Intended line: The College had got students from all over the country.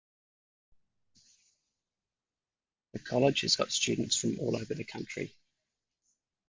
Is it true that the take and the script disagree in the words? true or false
true